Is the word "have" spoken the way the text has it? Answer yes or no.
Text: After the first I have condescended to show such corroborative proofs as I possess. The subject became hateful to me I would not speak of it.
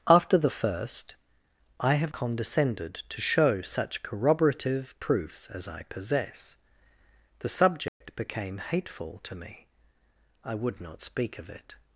yes